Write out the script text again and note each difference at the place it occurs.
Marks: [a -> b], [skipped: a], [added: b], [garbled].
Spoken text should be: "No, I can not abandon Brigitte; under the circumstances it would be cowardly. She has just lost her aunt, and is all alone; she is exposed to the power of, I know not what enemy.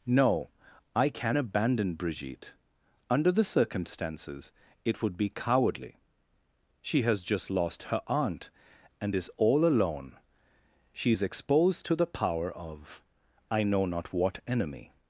"No, I can [skipped: not] abandon Brigitte; under the circumstances it would be cowardly. She has just lost her aunt, and is all alone; she is exposed to the power of, I know not what enemy.